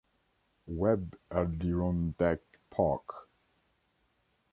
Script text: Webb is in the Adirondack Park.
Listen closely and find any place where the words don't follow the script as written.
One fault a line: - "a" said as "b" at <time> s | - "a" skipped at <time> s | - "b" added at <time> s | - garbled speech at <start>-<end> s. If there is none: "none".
- "is in the" skipped at 1.1 s